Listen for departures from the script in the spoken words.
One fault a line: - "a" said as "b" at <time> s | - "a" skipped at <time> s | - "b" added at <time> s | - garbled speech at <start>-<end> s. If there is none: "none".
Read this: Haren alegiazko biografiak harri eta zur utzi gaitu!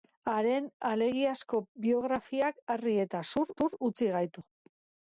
- "zur" added at 3.6 s